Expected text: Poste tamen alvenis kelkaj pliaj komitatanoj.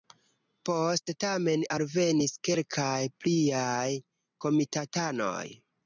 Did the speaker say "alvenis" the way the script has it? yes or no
yes